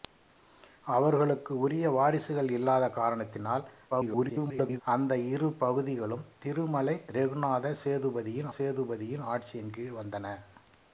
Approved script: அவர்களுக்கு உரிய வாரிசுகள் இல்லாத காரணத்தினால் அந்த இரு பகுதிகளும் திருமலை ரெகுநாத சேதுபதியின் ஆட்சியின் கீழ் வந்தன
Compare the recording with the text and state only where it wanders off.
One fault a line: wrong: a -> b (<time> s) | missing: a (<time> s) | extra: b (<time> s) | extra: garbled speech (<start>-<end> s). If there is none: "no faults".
extra: garbled speech (3.9-4.8 s)
extra: சேதுபதியின் (8.6 s)